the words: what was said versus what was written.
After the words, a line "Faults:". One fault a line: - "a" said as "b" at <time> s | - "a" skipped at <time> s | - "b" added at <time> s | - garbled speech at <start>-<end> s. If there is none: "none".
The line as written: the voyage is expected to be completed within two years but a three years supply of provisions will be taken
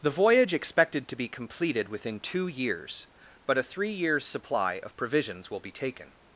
the voyage expected to be completed within two years but a three years supply of provisions will be taken
Faults:
- "is" skipped at 0.5 s